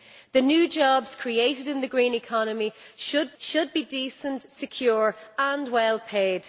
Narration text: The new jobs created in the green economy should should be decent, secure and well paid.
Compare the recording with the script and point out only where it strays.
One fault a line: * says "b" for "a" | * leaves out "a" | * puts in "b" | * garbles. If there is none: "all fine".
all fine